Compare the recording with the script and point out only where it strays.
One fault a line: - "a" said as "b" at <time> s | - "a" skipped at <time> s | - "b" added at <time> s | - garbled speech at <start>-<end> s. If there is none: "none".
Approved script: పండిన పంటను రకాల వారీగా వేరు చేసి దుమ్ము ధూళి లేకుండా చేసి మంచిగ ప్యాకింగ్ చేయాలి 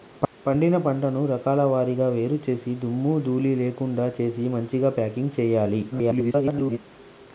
- garbled speech at 5.9-6.8 s